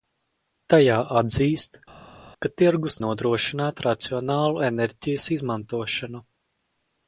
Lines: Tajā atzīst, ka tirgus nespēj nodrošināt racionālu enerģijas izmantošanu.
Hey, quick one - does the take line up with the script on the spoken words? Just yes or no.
no